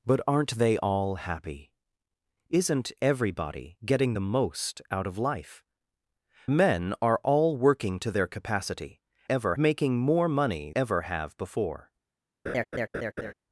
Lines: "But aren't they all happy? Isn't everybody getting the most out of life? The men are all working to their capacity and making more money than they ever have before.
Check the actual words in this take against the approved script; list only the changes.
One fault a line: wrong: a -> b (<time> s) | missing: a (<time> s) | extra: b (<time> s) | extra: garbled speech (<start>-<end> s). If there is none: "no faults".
missing: The (5.6 s)
wrong: and -> ever (9.3 s)
missing: than they (10.7 s)